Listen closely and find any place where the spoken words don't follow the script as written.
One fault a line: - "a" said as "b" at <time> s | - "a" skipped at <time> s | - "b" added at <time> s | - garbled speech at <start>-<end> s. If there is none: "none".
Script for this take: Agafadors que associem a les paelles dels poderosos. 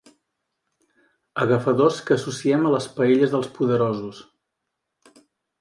none